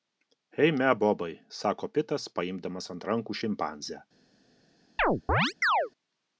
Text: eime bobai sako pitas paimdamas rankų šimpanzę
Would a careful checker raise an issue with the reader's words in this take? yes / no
yes